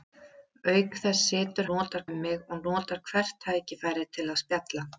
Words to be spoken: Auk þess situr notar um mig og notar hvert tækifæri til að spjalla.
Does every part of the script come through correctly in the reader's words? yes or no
yes